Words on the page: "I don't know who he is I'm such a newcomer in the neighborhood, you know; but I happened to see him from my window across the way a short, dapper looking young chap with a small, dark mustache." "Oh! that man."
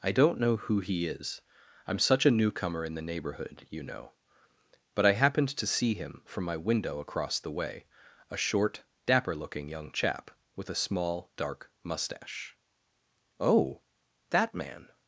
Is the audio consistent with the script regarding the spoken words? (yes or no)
yes